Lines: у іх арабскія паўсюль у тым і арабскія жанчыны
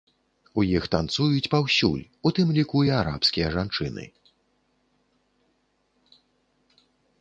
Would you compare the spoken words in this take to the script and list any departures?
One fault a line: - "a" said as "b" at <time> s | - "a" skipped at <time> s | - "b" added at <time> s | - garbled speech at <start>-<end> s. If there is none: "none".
- "арабскія" said as "танцуюць" at 0.9 s
- "ліку" added at 2.6 s